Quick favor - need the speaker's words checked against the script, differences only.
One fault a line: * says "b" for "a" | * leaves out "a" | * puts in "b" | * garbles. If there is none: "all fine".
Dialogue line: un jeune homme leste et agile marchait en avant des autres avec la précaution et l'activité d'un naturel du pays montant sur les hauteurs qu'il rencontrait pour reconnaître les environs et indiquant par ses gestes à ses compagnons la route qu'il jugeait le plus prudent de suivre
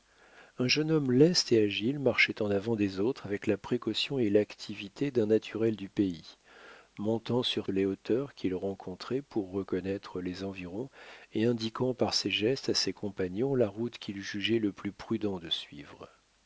all fine